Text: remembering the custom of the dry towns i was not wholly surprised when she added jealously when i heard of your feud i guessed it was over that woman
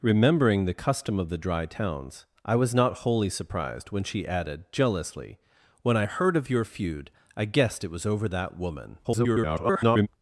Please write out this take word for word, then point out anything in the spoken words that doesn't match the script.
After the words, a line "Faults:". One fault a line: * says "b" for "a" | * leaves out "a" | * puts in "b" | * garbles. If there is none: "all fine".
remembering the custom of the dry towns i was not wholly surprised when she added jealously when i heard of your feud i guessed it was over that woman [garbled]
Faults:
* garbles